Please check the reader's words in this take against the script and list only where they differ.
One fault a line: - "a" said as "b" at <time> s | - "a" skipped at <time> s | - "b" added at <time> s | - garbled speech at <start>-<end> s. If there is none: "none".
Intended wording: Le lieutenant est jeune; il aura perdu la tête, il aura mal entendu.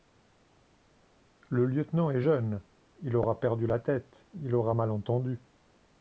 none